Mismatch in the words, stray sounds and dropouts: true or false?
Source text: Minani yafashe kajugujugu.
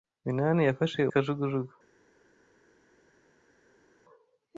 false